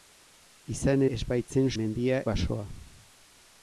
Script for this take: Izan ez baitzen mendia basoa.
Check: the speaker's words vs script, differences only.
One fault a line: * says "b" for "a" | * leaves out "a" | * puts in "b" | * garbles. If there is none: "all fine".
all fine